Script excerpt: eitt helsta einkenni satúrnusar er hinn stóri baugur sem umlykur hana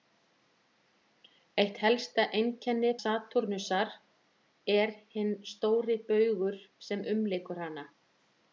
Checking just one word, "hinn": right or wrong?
right